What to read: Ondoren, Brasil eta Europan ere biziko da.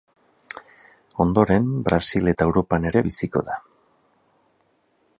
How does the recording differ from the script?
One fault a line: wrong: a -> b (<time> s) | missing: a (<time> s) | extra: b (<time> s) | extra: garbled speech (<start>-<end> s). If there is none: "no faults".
no faults